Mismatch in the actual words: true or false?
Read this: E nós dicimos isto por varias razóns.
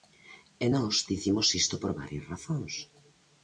false